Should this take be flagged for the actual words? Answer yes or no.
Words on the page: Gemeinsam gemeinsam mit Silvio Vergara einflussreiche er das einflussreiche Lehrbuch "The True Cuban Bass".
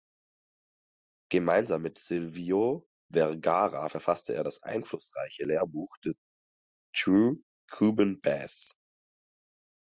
yes